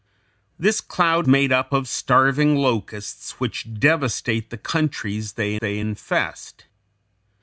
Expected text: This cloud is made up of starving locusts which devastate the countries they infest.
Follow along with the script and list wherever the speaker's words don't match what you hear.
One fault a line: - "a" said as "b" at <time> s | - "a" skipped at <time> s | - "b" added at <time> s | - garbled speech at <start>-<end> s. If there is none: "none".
- "is" skipped at 1.3 s
- "they" added at 5.6 s